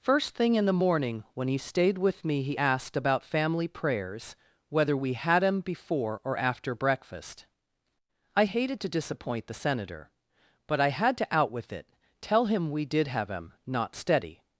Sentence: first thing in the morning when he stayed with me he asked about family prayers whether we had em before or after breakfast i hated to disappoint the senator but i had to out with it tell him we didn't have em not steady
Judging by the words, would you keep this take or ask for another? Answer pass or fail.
fail